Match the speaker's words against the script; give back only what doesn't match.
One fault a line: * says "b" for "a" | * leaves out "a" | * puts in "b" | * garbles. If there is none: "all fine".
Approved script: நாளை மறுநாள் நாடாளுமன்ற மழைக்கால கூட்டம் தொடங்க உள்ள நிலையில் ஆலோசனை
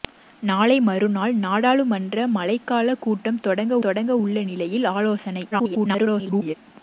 * puts in "தொடங்க"
* garbles